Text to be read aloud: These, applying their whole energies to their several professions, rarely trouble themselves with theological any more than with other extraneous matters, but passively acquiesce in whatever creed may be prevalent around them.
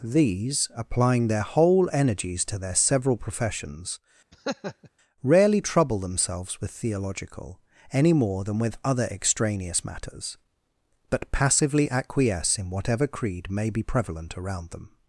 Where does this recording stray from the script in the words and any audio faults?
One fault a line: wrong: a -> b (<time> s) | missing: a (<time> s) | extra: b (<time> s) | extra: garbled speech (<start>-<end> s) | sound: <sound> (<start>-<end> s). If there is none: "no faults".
sound: laugh (4.3-4.9 s)